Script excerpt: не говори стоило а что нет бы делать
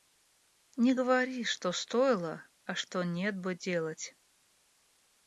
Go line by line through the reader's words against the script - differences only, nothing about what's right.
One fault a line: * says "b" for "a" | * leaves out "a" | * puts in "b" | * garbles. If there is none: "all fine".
* puts in "что"